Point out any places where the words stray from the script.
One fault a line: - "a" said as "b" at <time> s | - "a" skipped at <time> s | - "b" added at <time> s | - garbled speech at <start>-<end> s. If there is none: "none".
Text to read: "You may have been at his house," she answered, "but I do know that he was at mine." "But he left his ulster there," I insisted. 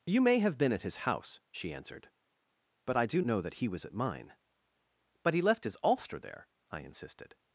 none